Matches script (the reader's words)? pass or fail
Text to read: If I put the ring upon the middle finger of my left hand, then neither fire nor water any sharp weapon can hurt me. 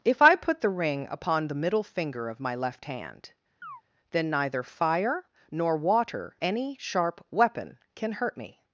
pass